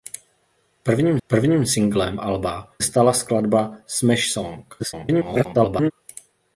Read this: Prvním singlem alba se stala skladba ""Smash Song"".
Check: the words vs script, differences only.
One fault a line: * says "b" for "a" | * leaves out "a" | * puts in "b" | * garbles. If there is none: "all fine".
* puts in "prvním"
* leaves out "se"
* garbles